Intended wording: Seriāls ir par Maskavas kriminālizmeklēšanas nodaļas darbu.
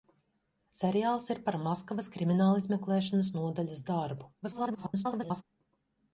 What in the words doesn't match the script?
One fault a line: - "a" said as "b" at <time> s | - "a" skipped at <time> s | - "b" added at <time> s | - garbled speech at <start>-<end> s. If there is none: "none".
- garbled speech at 4.4-5.4 s